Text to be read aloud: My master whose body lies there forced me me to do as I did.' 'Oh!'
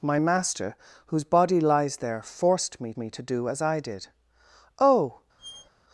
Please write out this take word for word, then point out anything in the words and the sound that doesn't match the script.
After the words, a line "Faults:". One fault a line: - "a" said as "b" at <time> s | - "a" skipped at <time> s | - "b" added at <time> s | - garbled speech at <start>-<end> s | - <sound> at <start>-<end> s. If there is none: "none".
My master whose body lies there forced me me to do as I did.' 'Oh!'
Faults:
- squeak at 5.4-5.7 s